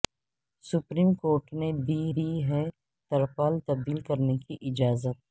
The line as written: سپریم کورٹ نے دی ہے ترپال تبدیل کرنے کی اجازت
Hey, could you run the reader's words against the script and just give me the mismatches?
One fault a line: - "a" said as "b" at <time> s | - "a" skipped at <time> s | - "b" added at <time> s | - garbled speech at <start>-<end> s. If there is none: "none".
- "دی" added at 2.2 s